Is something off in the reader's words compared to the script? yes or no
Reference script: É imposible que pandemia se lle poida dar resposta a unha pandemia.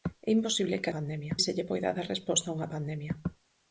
no